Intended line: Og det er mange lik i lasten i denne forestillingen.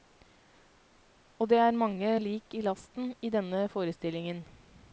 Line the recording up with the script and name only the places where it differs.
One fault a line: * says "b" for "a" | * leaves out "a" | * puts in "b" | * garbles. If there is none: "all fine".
all fine